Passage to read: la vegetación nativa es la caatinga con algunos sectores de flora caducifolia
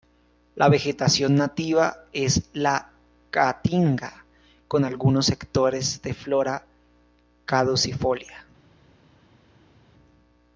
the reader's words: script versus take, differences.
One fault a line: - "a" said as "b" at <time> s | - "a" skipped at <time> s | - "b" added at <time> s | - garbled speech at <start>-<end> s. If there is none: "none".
none